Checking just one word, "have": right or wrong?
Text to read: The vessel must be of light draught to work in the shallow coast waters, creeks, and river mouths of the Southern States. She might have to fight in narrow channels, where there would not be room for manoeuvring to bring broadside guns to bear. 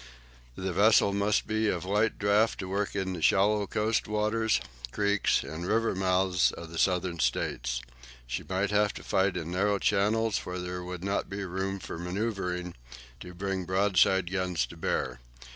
right